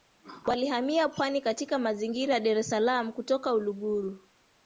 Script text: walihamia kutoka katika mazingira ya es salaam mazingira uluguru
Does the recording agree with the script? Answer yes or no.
no